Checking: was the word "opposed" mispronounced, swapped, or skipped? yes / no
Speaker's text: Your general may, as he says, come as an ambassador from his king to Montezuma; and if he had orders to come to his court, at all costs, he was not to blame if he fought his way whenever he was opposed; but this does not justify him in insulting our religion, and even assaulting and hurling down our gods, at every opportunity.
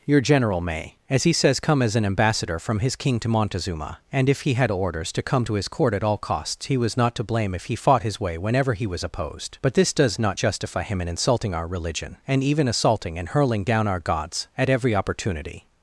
no